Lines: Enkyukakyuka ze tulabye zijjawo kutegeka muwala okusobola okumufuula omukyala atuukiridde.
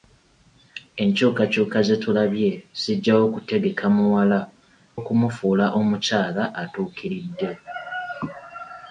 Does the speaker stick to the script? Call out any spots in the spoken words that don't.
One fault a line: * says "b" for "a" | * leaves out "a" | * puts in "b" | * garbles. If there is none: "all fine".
* leaves out "okusobola"